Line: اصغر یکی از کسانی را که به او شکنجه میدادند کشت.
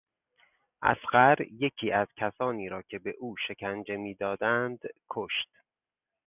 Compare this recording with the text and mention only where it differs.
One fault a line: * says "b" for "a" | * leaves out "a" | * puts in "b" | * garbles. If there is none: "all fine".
all fine